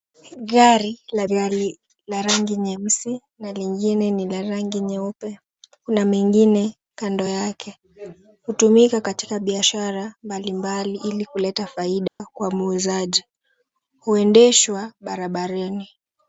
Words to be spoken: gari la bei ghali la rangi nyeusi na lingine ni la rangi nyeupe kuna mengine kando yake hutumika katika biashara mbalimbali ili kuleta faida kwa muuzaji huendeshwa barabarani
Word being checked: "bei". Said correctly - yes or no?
no